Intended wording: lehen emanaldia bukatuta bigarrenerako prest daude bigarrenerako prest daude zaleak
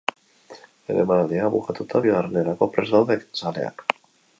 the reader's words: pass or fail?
fail